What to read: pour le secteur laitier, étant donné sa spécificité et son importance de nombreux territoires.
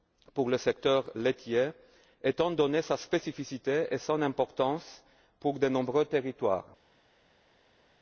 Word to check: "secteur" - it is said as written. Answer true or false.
true